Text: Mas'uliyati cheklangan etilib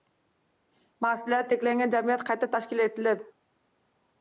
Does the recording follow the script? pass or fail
fail